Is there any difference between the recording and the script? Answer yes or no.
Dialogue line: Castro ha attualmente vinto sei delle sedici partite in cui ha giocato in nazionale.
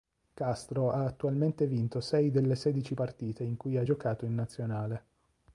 no